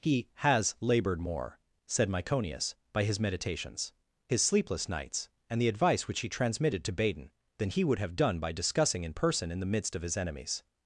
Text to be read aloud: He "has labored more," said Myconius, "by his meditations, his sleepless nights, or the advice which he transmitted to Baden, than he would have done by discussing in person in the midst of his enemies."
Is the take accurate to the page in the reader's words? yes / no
no